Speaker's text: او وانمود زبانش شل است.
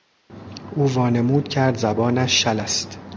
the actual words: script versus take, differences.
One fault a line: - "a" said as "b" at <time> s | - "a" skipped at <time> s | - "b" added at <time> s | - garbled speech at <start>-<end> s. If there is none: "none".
- "کرد" added at 1.5 s